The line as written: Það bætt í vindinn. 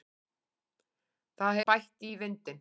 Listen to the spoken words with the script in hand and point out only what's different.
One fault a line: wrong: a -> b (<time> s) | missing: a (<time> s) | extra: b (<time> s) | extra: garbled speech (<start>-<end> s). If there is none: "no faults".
no faults